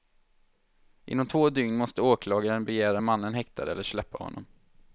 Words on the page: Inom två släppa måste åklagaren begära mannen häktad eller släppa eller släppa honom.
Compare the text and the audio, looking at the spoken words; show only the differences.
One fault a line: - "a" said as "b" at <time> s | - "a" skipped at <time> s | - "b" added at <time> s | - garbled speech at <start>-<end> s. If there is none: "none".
- "släppa" said as "dygn" at 1.5 s
- "eller släppa" skipped at 4.2 s